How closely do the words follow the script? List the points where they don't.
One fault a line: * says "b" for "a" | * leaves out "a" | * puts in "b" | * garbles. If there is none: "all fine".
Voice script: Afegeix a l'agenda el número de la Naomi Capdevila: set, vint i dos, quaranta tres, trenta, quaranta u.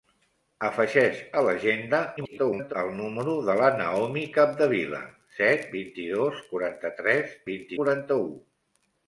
* garbles
* says "vint" for "trenta"